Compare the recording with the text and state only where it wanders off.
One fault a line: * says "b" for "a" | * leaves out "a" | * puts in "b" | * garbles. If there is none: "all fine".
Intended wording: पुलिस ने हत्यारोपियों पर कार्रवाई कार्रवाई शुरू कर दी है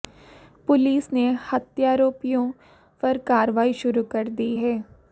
* leaves out "कार्रवाई"